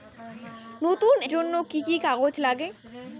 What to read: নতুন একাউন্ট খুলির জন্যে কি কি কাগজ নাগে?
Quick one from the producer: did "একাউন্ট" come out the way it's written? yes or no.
no